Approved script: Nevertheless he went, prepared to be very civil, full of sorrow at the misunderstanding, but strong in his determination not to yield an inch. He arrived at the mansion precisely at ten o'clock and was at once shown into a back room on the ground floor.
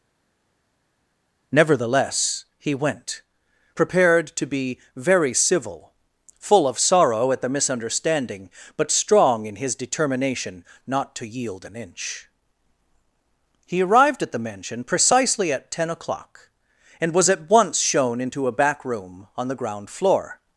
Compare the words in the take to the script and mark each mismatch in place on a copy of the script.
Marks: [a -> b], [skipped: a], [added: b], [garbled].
Nevertheless he went, prepared to be very civil, full of sorrow at the misunderstanding, but strong in his determination not to yield an inch. He arrived at the mansion precisely at ten o'clock and was at once shown into a back room on the ground floor.